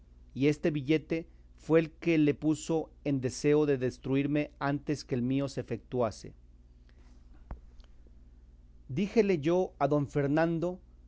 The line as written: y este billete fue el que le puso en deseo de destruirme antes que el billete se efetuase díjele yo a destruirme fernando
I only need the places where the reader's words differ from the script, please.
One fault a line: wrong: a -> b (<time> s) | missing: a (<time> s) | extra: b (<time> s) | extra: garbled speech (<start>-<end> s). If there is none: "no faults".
wrong: billete -> mío (5.2 s)
wrong: destruirme -> don (9.9 s)